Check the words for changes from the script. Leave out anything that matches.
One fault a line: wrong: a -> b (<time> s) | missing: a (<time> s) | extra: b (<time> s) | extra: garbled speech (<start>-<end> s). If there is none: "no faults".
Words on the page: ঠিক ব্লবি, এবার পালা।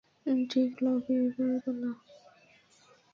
no faults